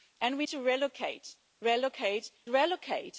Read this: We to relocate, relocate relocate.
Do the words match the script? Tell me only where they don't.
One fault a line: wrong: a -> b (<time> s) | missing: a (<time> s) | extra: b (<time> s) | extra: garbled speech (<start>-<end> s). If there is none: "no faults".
no faults